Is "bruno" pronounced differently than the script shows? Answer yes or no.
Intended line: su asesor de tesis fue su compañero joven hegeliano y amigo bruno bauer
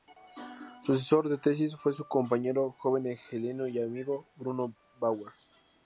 no